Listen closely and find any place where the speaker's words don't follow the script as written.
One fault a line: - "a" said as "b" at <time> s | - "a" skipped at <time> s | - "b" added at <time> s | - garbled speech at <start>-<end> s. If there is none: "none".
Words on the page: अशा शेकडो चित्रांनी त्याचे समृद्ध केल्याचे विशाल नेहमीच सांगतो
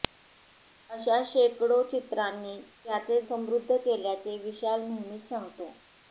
none